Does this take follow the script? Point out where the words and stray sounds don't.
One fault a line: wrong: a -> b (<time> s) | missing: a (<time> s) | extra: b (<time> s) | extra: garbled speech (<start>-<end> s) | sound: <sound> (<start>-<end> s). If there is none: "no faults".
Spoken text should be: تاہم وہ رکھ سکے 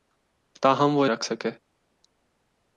no faults